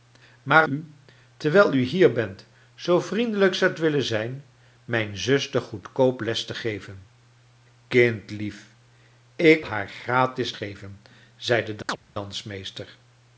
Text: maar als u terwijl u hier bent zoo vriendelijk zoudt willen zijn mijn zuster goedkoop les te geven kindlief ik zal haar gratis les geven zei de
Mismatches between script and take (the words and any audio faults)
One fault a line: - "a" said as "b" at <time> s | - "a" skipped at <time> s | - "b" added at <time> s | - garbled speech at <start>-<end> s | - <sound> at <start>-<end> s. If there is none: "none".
- "als" skipped at 0.7 s
- "zal" skipped at 9.7 s
- "les" skipped at 10.5 s
- chirp at 11.9-12.0 s